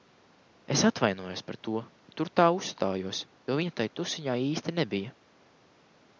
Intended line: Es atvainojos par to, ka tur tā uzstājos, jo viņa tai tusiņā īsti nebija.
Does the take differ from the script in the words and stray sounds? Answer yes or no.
no